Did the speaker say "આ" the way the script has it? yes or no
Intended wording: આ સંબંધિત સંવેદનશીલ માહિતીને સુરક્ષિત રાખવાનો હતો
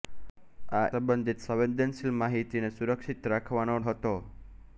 yes